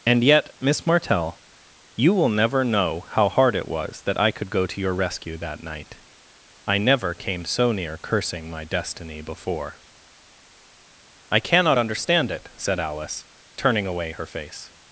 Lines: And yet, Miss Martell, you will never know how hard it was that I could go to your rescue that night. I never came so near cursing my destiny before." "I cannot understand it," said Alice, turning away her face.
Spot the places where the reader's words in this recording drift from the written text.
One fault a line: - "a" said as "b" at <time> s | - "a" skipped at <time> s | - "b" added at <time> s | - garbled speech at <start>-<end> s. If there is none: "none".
none